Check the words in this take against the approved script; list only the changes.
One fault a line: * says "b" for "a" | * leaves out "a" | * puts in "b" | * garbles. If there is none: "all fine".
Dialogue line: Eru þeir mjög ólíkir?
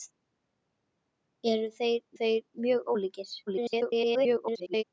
* puts in "þeir"
* garbles